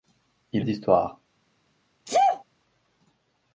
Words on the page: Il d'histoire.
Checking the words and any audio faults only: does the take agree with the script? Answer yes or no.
no